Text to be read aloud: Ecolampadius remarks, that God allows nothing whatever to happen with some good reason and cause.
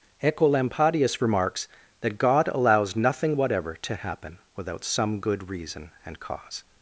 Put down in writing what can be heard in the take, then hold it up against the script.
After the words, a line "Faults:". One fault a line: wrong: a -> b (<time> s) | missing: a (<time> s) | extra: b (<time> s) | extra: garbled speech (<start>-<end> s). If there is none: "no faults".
Ecolampadius remarks, that God allows nothing whatever to happen without some good reason and cause.
Faults:
wrong: with -> without (4.5 s)